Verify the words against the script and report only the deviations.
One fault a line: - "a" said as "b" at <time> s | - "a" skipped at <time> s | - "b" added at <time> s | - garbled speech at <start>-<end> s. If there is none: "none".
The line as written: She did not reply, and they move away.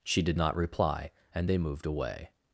- "move" said as "moved" at 1.6 s